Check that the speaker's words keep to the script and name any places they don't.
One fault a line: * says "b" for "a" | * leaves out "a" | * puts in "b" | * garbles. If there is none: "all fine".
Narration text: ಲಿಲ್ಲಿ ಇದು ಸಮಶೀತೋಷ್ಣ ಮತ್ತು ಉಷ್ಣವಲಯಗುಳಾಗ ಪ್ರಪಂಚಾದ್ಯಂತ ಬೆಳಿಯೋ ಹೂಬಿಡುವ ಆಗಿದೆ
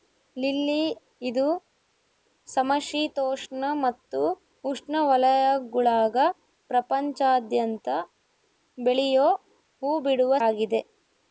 all fine